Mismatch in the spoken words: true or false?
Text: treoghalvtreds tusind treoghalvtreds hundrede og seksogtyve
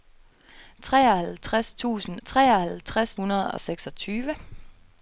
false